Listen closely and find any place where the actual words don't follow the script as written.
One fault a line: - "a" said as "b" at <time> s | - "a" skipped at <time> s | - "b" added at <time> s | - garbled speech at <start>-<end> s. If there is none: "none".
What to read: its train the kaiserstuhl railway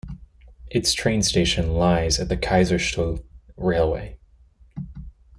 - "station lies at" added at 1.2 s